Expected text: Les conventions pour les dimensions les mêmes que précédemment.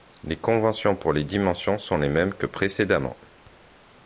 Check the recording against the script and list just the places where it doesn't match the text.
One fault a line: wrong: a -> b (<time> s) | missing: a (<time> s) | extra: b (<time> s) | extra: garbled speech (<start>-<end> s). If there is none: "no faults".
extra: sont (1.8 s)